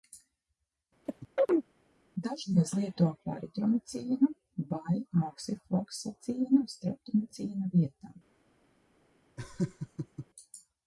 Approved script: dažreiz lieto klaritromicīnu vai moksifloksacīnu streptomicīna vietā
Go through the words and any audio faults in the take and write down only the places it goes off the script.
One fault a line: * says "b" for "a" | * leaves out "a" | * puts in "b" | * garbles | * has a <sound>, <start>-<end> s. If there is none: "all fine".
* has a chirp, 1.1-1.7 s
* has a laugh, 9.4-10.3 s